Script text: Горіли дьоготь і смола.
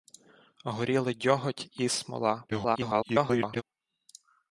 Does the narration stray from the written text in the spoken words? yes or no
yes